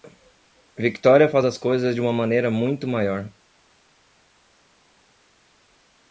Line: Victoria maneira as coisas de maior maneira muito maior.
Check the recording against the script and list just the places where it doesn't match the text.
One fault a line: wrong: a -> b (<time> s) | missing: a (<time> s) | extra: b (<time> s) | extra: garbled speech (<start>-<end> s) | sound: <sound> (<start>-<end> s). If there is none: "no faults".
wrong: maneira -> faz (1.3 s)
wrong: maior -> uma (2.0 s)